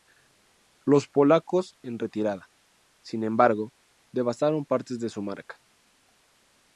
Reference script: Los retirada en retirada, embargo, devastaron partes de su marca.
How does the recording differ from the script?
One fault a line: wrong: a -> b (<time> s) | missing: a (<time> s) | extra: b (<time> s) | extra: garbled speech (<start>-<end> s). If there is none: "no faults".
wrong: retirada -> polacos (1.1 s)
extra: sin (3.0 s)